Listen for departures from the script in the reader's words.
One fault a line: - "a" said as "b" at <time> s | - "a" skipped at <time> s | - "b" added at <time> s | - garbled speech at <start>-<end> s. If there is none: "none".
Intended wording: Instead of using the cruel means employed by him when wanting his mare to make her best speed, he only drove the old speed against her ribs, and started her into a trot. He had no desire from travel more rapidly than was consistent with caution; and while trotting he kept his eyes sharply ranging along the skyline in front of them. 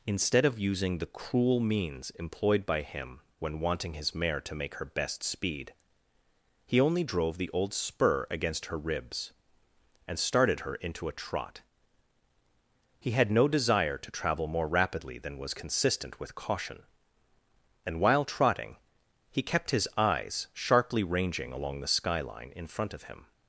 - "speed" said as "spur" at 7.7 s
- "from" said as "to" at 14.0 s
- "them" said as "him" at 23.0 s